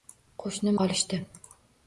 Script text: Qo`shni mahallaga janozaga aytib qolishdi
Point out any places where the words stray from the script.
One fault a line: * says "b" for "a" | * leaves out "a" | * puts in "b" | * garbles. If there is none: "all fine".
* leaves out "mahallaga janozaga aytib"